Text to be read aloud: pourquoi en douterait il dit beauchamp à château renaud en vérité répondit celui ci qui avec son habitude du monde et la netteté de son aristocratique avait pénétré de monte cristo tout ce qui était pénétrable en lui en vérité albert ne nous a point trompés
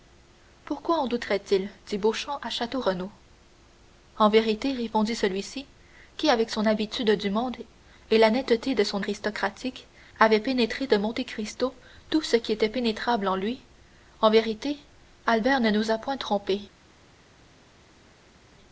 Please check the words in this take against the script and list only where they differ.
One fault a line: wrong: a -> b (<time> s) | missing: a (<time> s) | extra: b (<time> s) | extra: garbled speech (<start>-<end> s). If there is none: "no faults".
no faults